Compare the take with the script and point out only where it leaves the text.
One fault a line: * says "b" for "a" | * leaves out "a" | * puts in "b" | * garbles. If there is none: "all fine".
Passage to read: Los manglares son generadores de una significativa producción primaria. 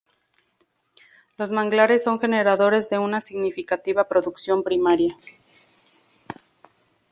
all fine